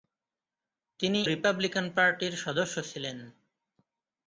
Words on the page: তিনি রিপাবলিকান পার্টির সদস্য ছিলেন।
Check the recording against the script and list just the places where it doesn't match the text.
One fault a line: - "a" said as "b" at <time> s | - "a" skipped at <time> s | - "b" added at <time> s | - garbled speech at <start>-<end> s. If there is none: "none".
none